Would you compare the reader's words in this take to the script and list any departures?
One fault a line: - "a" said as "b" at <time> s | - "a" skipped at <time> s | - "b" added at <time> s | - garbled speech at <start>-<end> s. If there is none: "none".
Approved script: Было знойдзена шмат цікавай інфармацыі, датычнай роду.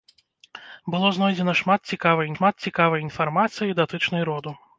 - "шмат цікавай" added at 2.4 s